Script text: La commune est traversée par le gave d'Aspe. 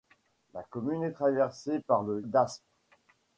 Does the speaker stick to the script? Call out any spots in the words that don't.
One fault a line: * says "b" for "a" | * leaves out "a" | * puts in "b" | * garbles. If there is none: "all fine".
* leaves out "gave"